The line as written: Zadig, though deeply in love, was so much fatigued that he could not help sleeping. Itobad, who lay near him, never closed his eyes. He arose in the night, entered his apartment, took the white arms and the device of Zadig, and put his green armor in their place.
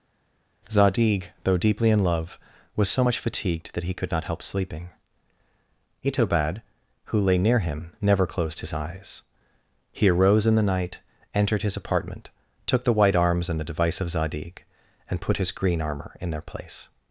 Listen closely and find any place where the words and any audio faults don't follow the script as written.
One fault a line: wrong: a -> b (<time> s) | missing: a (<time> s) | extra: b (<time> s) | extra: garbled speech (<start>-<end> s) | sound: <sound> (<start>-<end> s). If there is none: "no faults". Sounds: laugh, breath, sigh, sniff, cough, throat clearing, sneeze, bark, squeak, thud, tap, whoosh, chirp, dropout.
no faults